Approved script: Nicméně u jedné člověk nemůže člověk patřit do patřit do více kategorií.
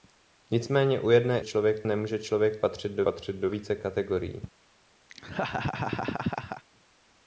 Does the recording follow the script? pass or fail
pass